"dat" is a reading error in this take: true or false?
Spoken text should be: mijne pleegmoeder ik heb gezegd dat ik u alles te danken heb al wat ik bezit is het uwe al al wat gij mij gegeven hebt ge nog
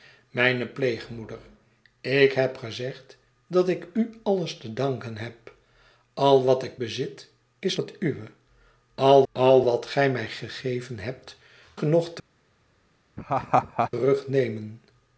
false